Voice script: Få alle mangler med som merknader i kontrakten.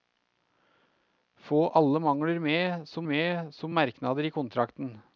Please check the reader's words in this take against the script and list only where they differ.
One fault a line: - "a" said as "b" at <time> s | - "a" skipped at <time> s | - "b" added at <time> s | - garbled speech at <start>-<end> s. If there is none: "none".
- "med som" added at 3.0 s